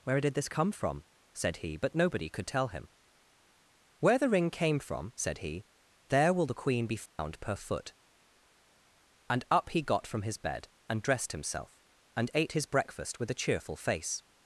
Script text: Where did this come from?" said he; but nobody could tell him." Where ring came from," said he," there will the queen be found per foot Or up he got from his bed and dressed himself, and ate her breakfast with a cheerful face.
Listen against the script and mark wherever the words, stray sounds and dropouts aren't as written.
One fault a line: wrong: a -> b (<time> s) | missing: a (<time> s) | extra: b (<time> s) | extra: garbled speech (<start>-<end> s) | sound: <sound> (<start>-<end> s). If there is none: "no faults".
extra: the (4.2 s)
sound: dropout (7.1-7.2 s)
wrong: Or -> And (9.3 s)
wrong: her -> his (12.5 s)